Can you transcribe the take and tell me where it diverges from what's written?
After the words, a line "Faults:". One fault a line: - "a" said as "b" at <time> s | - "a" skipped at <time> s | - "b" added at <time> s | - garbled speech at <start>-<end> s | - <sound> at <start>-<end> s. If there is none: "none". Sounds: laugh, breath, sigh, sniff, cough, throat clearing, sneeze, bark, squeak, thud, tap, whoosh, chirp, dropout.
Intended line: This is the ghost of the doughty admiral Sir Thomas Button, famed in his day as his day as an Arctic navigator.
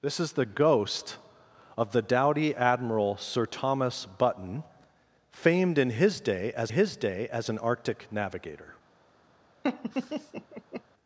This is the ghost of the doughty admiral Sir Thomas Button, famed in his day as his day as an Arctic navigator.
Faults:
- laugh at 9.6-10.8 s